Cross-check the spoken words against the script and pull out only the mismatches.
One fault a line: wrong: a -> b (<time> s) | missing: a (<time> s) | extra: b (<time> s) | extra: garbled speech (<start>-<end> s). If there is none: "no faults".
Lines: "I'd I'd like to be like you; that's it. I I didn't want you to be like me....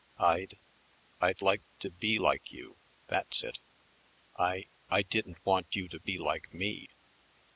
no faults